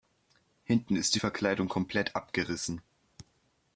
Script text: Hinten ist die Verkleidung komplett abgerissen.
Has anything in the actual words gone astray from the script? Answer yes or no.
no